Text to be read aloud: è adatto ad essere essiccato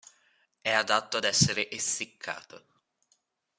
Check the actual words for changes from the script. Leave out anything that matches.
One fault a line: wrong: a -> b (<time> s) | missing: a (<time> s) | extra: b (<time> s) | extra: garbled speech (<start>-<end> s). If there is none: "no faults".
no faults